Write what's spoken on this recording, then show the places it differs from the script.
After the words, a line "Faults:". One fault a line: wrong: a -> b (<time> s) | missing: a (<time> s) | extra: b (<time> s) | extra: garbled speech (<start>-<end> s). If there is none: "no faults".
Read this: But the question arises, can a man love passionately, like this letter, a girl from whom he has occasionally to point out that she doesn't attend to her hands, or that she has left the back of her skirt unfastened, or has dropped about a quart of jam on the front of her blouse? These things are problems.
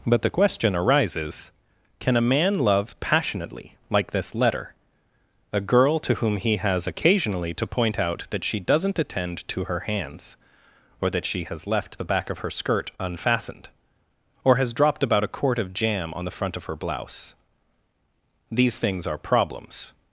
But the question arises, can a man love passionately, like this letter, a girl to whom he has occasionally to point out that she doesn't attend to her hands, or that she has left the back of her skirt unfastened, or has dropped about a quart of jam on the front of her blouse? These things are problems.
Faults:
wrong: from -> to (6.0 s)